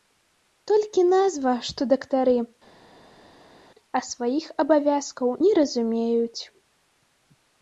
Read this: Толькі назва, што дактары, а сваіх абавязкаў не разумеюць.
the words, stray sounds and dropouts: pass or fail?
pass